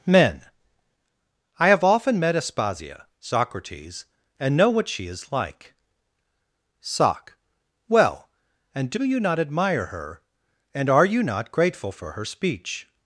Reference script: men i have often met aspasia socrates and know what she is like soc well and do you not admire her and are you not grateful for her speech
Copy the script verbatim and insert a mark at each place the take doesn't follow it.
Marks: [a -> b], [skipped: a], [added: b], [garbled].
men i have often met aspasia socrates and know what she is like soc well and do you not admire her and are you not grateful for her speech